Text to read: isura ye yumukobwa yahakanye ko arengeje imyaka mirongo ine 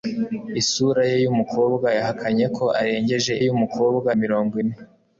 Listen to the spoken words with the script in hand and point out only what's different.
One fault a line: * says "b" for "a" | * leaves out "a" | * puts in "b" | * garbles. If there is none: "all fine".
* says "yumukobwa" for "imyaka"